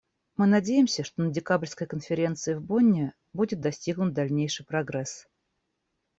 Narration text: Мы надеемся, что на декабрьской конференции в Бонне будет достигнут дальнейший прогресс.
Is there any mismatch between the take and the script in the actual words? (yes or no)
no